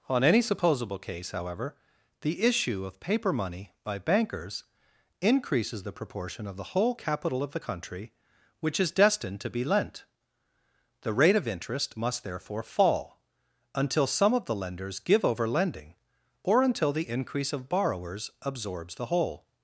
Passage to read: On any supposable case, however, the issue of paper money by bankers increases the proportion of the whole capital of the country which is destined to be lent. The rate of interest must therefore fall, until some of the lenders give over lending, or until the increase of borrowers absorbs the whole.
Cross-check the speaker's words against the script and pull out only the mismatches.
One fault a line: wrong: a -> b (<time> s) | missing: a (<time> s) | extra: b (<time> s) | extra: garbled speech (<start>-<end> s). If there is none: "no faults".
no faults